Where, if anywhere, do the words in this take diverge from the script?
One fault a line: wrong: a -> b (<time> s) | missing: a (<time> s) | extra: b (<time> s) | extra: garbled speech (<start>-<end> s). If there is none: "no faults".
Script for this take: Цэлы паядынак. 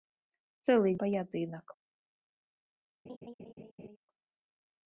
no faults